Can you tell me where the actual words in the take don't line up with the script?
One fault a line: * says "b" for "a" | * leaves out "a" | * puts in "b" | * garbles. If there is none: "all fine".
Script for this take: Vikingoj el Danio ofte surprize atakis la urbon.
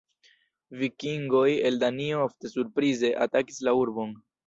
all fine